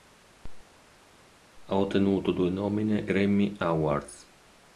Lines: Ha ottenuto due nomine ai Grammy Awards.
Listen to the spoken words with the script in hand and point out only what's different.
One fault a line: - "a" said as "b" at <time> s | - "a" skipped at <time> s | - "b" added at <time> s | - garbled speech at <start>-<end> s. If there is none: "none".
- "ai" skipped at 3.1 s